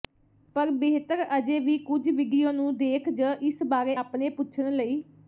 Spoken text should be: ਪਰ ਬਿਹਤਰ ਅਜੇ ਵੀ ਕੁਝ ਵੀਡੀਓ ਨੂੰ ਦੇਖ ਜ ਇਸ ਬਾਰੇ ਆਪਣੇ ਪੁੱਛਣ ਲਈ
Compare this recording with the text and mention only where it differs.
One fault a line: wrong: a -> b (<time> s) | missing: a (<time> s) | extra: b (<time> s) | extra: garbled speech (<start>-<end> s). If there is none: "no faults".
no faults